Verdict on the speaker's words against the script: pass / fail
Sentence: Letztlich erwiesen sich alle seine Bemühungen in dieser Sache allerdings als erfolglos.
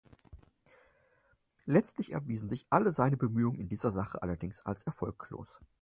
pass